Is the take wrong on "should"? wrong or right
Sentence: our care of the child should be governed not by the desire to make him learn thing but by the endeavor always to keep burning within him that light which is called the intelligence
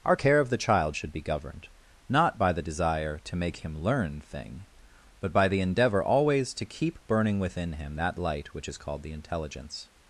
right